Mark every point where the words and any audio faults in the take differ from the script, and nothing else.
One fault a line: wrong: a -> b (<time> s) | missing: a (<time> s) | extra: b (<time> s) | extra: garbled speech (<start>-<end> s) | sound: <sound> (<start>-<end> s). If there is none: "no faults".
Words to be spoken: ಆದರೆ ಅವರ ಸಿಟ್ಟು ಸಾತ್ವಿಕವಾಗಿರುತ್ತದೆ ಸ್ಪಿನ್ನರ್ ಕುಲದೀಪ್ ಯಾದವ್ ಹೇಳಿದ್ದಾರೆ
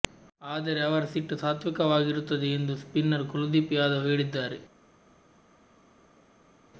extra: ಎಂದು (2.5 s)